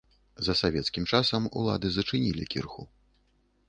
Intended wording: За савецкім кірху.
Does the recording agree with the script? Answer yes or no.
no